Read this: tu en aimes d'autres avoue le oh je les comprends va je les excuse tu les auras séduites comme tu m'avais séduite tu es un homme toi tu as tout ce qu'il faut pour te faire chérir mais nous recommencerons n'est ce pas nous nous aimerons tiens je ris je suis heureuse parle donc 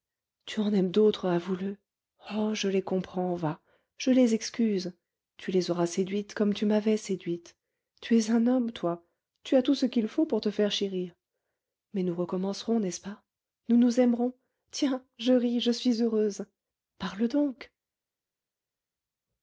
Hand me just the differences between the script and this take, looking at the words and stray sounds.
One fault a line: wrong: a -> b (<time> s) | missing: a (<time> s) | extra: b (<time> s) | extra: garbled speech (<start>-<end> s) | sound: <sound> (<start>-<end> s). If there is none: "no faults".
no faults